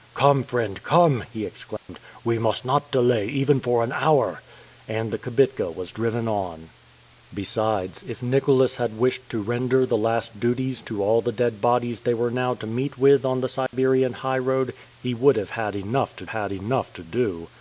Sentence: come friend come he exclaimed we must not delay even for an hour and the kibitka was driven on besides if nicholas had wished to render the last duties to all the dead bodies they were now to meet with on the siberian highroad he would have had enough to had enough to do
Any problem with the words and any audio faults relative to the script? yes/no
yes